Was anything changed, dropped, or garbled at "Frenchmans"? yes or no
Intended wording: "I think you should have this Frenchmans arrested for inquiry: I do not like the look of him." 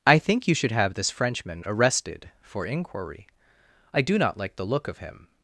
yes